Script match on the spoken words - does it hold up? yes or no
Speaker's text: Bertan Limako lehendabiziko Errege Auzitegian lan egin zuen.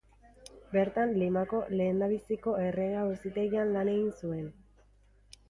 yes